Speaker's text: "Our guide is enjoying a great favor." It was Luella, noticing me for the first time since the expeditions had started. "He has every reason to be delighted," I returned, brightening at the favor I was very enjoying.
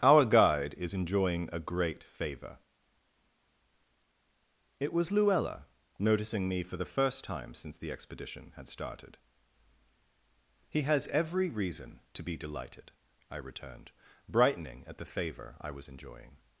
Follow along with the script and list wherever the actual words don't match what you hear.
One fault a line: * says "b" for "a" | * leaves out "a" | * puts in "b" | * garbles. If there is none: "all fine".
* says "expedition" for "expeditions"
* leaves out "very"